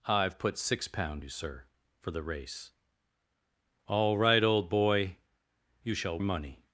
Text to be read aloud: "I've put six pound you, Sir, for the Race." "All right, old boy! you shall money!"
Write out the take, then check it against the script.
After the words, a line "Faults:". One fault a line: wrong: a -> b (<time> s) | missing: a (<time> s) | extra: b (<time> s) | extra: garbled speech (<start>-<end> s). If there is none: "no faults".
"I've put six pound you, Sir, for the Race." "All right, old boy! you shall money!"
Faults:
no faults